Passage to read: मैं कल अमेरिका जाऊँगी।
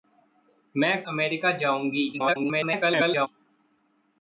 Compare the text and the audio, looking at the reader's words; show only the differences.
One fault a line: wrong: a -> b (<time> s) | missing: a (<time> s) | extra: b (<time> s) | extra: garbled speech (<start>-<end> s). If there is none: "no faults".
missing: कल (1.1 s)
extra: garbled speech (2.1-3.3 s)